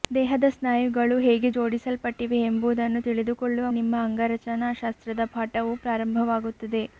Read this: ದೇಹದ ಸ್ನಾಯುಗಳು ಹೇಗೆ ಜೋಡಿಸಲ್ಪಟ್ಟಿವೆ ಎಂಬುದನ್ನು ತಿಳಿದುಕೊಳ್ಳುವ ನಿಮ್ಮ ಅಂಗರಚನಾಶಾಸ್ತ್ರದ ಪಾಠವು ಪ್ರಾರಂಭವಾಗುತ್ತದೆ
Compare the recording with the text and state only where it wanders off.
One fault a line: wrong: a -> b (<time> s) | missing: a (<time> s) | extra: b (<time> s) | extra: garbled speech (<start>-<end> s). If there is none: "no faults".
no faults